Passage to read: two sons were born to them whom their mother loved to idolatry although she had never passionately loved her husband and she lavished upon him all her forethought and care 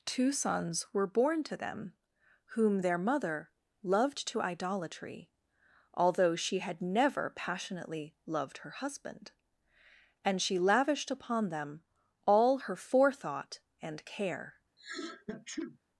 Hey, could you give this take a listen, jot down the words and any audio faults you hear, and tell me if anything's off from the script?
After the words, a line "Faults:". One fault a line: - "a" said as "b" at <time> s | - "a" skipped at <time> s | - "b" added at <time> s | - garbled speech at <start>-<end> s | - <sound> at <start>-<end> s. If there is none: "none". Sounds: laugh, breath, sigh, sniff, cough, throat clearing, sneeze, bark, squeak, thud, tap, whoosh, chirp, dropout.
two sons were born to them whom their mother loved to idolatry although she had never passionately loved her husband and she lavished upon them all her forethought and care
Faults:
- "him" said as "them" at 11.5 s
- sneeze at 14.8-15.8 s